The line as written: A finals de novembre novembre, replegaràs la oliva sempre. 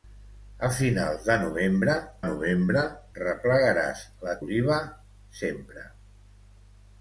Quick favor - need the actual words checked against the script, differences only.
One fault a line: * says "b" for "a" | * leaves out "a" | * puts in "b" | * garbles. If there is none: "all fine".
all fine